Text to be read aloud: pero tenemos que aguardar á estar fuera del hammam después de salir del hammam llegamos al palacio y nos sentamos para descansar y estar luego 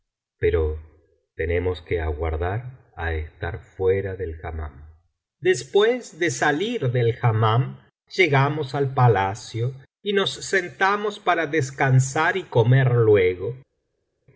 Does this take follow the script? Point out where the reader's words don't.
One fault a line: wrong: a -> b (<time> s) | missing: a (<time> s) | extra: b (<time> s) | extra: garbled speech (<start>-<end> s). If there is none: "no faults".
wrong: estar -> comer (12.4 s)